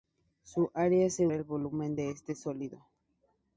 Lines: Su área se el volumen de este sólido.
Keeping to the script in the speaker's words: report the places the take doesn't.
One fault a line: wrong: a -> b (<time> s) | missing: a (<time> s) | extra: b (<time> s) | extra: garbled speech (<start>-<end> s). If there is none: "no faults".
no faults